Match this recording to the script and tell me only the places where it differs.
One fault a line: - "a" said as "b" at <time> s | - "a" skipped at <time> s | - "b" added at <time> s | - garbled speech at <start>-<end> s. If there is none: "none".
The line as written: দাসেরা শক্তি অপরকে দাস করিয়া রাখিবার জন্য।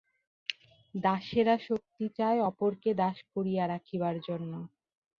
- "চায়" added at 2.2 s